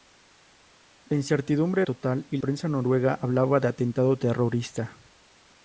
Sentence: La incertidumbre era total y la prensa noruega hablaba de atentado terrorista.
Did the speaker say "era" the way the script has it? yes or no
no